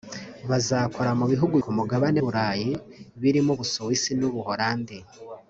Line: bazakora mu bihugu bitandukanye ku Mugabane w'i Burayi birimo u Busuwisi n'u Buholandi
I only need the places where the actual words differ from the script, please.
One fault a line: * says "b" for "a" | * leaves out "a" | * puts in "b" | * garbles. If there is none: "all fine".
* leaves out "bitandukanye"
* leaves out "w'i"